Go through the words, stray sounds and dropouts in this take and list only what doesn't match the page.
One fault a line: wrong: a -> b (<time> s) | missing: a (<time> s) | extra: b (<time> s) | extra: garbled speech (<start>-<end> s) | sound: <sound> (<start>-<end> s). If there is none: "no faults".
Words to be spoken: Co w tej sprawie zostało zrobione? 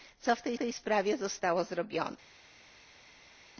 extra: tej (0.6 s)